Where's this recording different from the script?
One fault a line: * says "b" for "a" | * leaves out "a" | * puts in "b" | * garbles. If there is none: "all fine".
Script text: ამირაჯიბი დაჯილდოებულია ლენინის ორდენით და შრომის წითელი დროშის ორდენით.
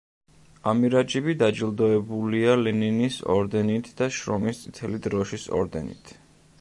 all fine